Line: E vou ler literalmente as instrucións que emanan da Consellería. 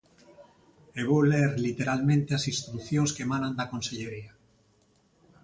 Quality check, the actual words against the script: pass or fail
pass